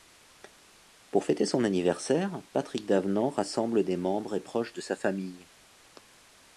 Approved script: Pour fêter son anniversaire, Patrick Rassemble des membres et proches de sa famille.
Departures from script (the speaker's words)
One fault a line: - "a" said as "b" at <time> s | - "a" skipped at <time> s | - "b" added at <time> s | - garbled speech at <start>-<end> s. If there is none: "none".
- "Davenant" added at 2.9 s